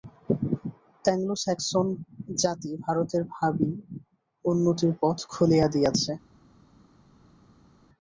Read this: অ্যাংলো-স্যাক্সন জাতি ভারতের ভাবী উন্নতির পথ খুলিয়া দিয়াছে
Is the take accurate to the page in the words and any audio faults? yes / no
yes